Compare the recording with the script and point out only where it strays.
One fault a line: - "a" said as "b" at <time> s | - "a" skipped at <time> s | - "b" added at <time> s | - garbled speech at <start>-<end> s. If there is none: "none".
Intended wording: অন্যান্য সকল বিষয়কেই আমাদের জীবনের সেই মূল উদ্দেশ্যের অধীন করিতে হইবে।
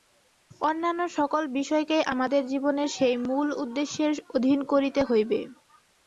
none